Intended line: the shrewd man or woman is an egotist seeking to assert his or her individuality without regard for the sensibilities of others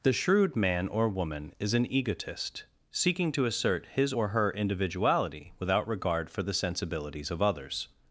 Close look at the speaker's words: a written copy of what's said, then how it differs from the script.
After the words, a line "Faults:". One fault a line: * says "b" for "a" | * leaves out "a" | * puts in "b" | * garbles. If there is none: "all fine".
the shrewd man or woman is an egotist seeking to assert his or her individuality without regard for the sensibilities of others
Faults:
all fine